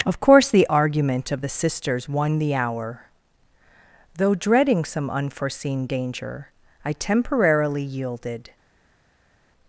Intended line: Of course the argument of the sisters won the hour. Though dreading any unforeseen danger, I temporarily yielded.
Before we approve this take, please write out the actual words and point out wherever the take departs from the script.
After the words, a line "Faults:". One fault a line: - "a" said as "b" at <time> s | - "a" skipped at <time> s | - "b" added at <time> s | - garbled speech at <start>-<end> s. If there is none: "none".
Of course the argument of the sisters won the hour. Though dreading some unforeseen danger, I temporarily yielded.
Faults:
- "any" said as "some" at 4.8 s